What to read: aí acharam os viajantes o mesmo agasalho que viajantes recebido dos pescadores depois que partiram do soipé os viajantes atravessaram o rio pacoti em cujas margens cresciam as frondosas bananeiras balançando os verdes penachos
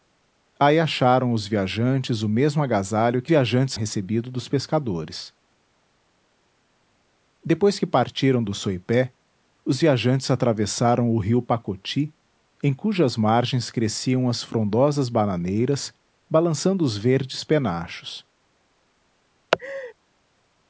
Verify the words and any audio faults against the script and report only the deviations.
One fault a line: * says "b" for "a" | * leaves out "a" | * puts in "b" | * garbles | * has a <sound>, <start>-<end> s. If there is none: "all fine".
* has a laugh, 19.5-19.9 s